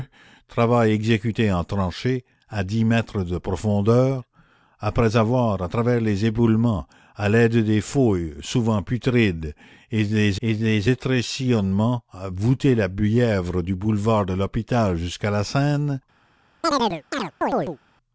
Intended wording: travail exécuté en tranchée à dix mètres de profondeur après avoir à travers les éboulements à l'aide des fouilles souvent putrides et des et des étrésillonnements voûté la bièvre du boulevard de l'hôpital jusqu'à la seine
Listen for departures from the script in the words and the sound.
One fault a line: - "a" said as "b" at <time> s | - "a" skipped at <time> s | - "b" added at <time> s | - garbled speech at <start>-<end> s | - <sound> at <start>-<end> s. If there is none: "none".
- chirp at 16.6-17.8 s